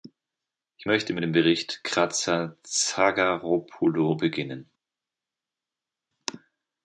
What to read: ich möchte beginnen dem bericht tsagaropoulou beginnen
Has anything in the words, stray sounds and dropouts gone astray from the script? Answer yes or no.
yes